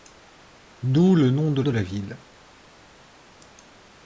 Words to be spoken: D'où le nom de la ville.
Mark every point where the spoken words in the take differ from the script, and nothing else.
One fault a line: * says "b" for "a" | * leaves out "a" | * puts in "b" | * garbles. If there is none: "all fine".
* puts in "de"